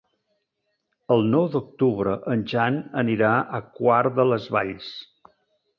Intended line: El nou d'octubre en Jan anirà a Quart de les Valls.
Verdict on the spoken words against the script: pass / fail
pass